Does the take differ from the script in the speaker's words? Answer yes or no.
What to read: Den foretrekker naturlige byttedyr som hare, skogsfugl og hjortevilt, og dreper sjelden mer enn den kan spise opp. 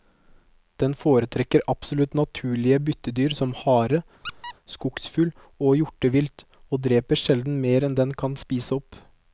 yes